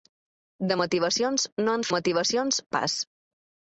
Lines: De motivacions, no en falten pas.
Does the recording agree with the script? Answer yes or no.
no